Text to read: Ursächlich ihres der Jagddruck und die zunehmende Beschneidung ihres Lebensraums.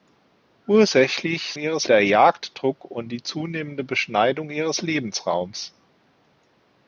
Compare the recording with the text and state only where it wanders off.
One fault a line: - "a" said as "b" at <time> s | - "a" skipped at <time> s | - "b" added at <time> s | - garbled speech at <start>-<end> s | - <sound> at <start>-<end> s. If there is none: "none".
none